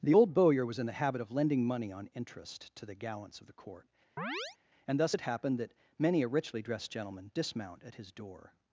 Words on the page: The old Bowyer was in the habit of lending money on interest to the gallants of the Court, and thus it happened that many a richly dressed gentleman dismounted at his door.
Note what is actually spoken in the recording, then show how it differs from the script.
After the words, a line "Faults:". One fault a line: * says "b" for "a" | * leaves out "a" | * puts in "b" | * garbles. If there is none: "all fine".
The old Bowyer was in the habit of lending money on interest to the gallants of the Court, and thus it happened that many a richly dressed gentleman dismount at his door.
Faults:
* says "dismount" for "dismounted"